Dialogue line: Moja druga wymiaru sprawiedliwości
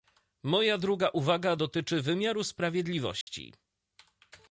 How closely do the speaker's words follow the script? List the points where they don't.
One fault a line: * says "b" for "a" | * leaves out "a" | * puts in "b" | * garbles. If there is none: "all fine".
* puts in "uwaga dotyczy"